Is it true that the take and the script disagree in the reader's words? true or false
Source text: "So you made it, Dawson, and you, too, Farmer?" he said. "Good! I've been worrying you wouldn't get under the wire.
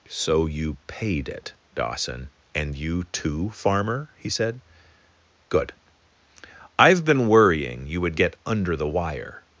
true